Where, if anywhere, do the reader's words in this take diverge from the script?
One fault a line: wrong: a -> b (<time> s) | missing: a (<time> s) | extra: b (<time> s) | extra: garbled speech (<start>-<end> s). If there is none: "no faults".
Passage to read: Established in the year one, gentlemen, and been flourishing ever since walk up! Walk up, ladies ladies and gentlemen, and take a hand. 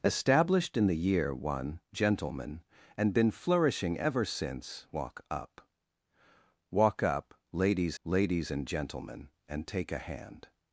no faults